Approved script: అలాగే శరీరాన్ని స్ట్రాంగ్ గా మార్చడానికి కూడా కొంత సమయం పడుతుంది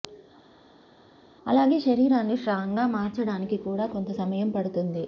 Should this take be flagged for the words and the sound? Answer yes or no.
no